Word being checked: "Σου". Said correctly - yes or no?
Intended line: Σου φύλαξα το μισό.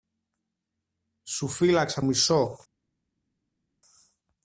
yes